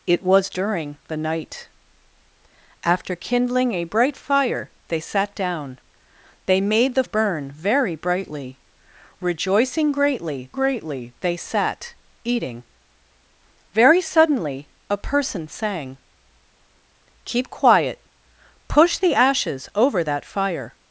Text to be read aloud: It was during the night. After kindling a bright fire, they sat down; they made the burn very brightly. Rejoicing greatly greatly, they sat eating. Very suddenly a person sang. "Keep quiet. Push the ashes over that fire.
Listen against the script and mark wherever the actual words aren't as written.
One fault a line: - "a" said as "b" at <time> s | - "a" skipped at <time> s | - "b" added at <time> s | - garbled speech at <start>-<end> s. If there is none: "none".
none